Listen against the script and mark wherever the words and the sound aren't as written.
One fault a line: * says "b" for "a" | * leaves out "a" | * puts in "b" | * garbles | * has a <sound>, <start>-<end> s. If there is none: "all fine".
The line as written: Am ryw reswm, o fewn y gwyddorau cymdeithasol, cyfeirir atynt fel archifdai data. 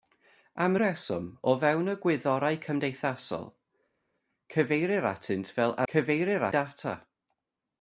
* leaves out "ryw"
* says "cyfeirir" for "archifdai"